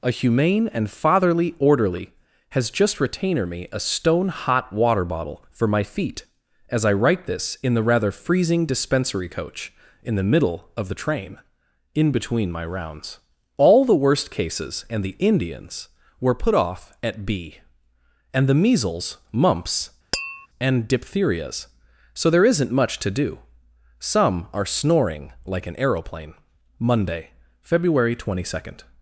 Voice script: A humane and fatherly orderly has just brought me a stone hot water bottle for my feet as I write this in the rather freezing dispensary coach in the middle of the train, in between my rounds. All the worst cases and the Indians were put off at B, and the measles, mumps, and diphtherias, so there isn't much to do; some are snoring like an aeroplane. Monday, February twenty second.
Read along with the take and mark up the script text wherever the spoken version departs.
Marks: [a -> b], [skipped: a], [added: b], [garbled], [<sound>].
A humane and fatherly orderly has just [brought -> retainer] me a stone hot water bottle for my feet as I write this in the rather freezing dispensary coach in the middle of the train, in between my rounds. All the worst cases and the Indians were put off at B, and the measles, mumps, [tap] and diphtherias, so there isn't much to do; some are snoring like an aeroplane. Monday, February twenty second.